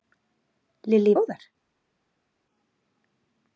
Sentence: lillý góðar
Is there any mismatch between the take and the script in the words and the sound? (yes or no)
no